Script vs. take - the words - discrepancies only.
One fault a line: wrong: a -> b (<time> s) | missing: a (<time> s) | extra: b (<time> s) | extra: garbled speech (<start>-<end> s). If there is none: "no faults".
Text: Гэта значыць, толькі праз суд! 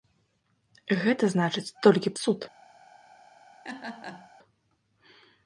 missing: праз (2.2 s)